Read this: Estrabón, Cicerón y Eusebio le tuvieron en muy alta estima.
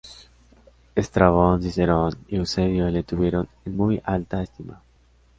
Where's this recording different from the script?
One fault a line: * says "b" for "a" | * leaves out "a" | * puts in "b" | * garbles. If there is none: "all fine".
all fine